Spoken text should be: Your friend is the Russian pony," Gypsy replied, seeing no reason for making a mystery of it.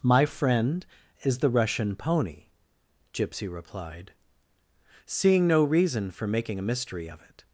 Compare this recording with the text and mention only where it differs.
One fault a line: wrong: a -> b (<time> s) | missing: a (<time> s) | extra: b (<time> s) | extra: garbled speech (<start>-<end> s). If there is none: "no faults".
wrong: Your -> My (0.0 s)